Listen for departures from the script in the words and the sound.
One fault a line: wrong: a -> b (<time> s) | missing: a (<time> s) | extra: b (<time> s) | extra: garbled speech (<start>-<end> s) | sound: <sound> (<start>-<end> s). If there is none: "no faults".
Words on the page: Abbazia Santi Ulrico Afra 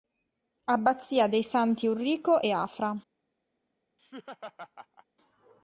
extra: dei (1.3 s)
extra: e (2.4 s)
sound: laugh (4.0-5.1 s)